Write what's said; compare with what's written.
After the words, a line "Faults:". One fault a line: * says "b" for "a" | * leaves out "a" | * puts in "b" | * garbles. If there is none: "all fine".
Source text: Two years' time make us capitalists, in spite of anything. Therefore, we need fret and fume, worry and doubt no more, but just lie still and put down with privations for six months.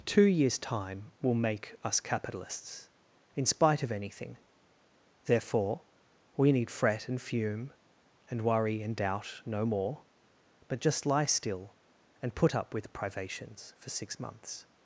Two years' time will make us capitalists, in spite of anything. Therefore, we need fret and fume, and worry and doubt no more, but just lie still and put up with privations for six months.
Faults:
* puts in "will"
* puts in "and"
* says "up" for "down"